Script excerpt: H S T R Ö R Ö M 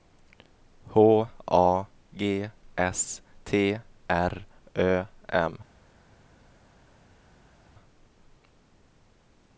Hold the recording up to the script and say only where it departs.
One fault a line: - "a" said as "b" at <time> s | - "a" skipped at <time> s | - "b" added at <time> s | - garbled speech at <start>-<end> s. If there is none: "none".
- "A G" added at 1.5 s
- "R Ö" skipped at 5.0 s